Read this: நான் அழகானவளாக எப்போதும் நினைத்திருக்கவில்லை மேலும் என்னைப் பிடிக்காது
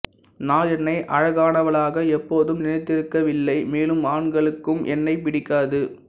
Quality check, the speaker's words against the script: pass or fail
fail